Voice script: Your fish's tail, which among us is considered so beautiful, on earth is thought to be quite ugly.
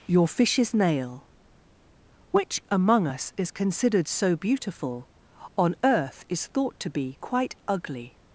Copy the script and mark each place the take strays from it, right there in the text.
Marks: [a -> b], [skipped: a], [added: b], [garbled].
Your fish's [tail, -> nail] which among us is considered so beautiful, on earth is thought to be quite ugly.